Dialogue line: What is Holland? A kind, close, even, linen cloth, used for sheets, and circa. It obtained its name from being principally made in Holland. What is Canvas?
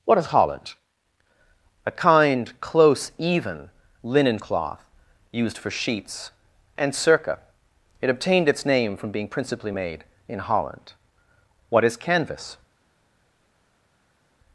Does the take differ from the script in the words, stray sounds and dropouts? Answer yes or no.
no